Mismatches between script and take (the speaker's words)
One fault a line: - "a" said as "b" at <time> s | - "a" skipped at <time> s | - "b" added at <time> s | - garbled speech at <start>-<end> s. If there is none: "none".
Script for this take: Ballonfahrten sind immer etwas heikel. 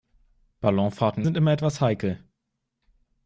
none